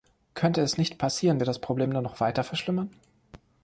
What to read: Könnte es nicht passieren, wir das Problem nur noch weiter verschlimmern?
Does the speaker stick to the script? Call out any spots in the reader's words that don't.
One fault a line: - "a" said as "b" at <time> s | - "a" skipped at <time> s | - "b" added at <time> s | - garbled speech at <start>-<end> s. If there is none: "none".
none